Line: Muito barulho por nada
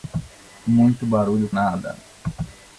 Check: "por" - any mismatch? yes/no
yes